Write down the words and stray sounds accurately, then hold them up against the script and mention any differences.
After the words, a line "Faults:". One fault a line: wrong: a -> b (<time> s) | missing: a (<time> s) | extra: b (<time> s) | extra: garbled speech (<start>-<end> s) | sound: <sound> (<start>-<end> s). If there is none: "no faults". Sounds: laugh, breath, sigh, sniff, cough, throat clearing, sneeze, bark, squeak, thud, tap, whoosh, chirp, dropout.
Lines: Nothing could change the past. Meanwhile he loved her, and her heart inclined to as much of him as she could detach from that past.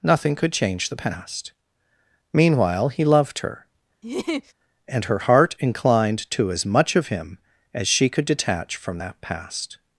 Nothing could change the past. Meanwhile he loved her, and her heart inclined to as much of him as she could detach from that past.
Faults:
sound: laugh (4.0-4.5 s)